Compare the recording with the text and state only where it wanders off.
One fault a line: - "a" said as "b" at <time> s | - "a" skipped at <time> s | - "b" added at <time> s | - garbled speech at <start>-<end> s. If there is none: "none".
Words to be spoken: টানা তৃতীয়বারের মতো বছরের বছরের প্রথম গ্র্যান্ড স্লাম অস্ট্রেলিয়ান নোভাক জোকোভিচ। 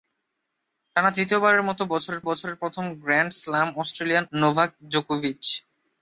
none